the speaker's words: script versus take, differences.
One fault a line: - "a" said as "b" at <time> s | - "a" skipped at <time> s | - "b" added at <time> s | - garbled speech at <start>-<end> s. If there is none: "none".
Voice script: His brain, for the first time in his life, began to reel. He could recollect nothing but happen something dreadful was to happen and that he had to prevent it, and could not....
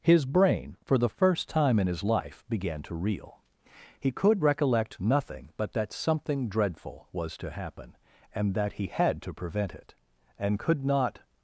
- "happen" said as "that" at 5.7 s